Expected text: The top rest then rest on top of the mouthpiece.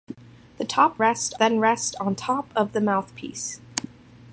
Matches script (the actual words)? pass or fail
pass